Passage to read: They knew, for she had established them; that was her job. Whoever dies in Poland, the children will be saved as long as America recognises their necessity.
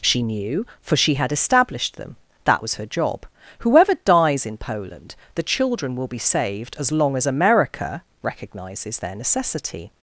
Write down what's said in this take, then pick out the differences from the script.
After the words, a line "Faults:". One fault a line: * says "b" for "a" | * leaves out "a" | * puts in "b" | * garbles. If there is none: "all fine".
She knew, for she had established them; that was her job. Whoever dies in Poland, the children will be saved as long as America recognises their necessity.
Faults:
* says "She" for "They"